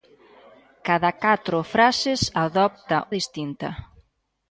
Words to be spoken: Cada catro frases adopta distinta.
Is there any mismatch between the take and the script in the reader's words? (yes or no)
no